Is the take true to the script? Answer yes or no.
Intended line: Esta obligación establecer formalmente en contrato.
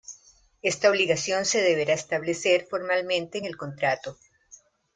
no